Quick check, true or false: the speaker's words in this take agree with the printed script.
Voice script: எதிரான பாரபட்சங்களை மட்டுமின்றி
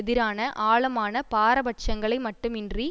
false